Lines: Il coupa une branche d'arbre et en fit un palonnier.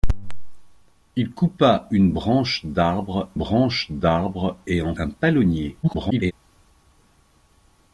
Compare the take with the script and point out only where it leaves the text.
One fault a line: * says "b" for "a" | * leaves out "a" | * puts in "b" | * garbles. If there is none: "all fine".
* puts in "branche d'arbre"
* leaves out "fit"
* garbles